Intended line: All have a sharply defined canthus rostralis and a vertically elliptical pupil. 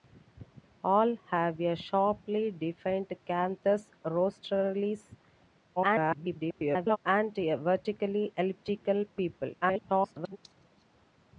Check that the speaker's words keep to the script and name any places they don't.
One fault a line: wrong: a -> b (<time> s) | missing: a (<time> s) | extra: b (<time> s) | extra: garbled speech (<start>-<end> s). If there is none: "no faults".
extra: garbled speech (5.8-7.0 s)
extra: garbled speech (9.6-10.4 s)